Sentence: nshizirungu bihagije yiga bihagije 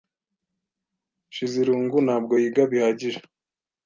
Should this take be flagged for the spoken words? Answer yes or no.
yes